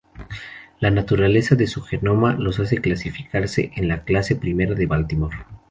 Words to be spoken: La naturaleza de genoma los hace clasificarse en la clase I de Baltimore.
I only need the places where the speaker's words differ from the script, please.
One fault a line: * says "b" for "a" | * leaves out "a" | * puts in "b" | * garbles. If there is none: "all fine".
* puts in "su"